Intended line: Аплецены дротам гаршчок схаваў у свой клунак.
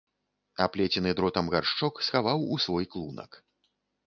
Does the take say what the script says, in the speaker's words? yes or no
yes